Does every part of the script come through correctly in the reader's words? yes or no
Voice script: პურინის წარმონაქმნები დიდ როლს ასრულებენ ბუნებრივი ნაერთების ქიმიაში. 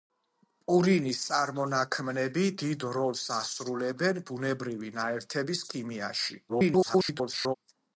no